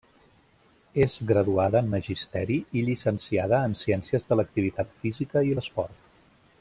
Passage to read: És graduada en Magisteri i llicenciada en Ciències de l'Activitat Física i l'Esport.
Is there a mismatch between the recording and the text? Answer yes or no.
no